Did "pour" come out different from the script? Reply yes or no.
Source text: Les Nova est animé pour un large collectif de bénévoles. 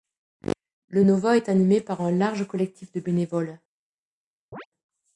yes